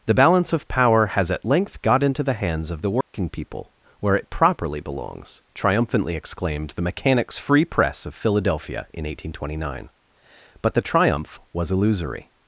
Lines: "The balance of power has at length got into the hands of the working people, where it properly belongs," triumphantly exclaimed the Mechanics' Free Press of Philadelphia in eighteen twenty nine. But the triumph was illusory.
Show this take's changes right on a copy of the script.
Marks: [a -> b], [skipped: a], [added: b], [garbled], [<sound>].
"The balance of power has at length got into the hands of the working [dropout] people, where it properly belongs," triumphantly exclaimed the Mechanics' Free Press of Philadelphia in eighteen twenty nine. But the triumph was illusory.